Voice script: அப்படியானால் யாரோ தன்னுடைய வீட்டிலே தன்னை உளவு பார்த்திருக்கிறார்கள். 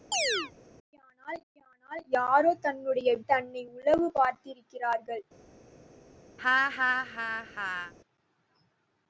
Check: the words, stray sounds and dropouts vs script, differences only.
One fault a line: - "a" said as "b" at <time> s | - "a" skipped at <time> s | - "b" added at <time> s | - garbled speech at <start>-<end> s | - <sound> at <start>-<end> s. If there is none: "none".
- chirp at 0.1-0.5 s
- "அப்படியானால்" added at 1.5 s
- "வீட்டிலே" skipped at 3.1 s
- laugh at 6.4-7.9 s